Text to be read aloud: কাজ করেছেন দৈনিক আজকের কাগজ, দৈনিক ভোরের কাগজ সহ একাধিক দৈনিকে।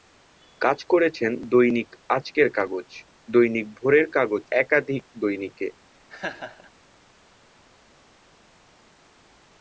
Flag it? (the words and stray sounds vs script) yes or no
yes